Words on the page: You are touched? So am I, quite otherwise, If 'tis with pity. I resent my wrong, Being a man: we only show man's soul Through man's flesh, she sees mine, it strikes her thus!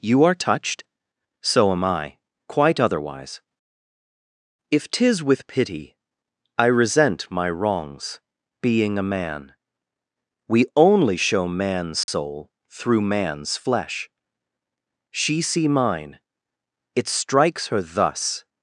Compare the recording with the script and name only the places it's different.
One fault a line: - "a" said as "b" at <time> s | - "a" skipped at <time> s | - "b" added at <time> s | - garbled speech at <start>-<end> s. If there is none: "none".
- "wrong" said as "wrongs" at 7.5 s
- "sees" said as "see" at 15.4 s